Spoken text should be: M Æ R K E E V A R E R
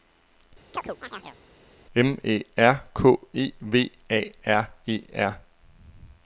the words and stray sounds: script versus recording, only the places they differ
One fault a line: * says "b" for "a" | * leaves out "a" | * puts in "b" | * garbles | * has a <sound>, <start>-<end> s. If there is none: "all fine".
* has a chirp, 0.7-1.4 s
* leaves out "E"